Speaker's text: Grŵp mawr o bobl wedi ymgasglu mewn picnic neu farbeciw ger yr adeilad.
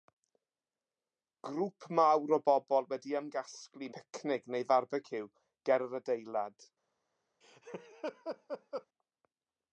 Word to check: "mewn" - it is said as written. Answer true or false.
false